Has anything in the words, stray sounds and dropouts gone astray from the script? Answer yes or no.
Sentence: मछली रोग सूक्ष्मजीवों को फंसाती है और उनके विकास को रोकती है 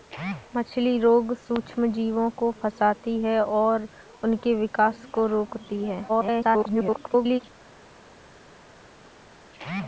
yes